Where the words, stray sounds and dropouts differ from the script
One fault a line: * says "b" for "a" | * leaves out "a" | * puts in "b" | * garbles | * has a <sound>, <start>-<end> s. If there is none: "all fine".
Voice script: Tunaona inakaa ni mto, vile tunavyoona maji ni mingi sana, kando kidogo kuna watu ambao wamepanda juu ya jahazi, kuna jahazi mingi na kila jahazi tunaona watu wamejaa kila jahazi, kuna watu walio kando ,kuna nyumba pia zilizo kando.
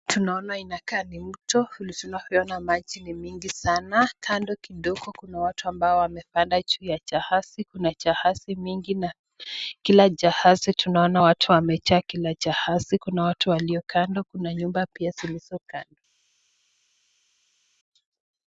all fine